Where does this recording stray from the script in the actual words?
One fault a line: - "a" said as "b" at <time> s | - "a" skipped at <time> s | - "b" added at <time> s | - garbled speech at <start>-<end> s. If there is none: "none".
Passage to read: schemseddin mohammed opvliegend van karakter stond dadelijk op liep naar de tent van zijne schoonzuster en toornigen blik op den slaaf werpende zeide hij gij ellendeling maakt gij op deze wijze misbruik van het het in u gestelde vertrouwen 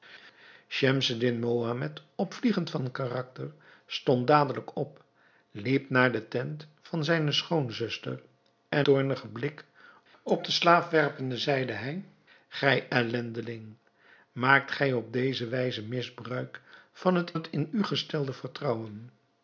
none